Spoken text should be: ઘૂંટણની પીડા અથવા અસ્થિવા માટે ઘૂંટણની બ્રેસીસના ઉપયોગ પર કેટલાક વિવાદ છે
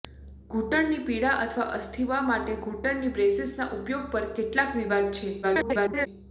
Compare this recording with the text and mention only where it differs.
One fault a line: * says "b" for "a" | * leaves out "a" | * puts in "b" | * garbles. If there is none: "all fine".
* garbles